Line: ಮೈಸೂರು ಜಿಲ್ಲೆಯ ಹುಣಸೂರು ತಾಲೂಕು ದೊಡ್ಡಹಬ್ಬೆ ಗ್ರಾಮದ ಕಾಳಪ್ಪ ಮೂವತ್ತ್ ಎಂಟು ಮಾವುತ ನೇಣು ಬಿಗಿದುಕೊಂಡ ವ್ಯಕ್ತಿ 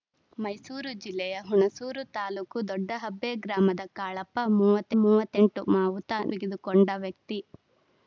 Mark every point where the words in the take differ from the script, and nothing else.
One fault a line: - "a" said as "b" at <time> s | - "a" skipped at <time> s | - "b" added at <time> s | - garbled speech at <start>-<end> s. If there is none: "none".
- "ಮೂವತ್ತ್" added at 5.0 s
- "ನೇಣು" skipped at 6.1 s